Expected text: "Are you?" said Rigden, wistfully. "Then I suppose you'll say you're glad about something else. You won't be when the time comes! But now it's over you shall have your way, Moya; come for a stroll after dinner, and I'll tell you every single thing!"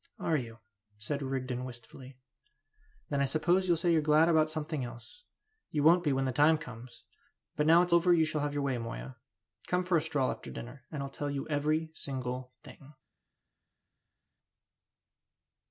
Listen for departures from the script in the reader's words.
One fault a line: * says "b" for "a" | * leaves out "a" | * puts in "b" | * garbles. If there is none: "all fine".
all fine